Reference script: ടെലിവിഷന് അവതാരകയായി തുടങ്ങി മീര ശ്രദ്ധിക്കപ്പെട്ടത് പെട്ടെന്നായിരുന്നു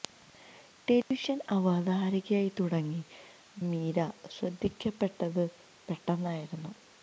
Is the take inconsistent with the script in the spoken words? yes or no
no